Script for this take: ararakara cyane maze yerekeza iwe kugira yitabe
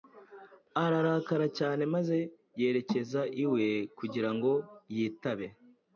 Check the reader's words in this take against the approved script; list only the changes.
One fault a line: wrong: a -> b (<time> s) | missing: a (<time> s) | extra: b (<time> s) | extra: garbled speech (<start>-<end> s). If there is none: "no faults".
extra: ngo (4.3 s)